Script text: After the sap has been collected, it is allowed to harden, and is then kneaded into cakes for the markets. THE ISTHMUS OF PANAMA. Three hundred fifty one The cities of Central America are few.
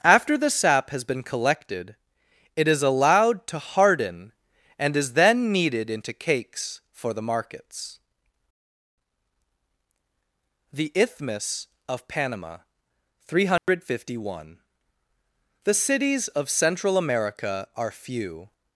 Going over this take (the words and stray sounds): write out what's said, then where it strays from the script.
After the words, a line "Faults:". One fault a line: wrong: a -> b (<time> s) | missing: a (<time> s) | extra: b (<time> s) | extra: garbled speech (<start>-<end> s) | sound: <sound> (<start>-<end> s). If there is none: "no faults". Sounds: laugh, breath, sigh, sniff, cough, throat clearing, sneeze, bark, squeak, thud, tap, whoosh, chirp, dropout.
After the sap has been collected, it is allowed to harden, and is then kneaded into cakes for the markets. THE ISTHMUS OF PANAMA. Three hundred fifty one The cities of Central America are few.
Faults:
sound: dropout (13.6-13.7 s)